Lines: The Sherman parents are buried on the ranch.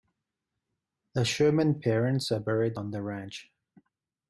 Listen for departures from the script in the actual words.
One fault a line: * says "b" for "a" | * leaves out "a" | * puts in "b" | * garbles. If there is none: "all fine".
all fine